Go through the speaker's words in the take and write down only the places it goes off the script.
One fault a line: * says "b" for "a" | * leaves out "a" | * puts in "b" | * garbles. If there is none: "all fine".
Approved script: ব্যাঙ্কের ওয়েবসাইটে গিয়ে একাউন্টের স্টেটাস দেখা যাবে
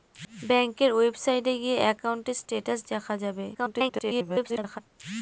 * garbles